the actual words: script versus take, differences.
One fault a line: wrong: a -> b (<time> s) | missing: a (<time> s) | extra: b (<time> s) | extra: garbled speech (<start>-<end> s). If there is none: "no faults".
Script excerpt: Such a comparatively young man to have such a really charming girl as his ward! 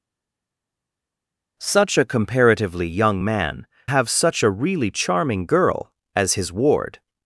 missing: to (3.7 s)